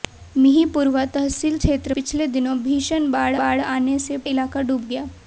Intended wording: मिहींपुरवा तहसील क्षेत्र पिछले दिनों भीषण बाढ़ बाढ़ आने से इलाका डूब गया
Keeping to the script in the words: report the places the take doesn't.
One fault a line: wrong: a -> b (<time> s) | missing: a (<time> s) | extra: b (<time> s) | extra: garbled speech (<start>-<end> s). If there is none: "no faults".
no faults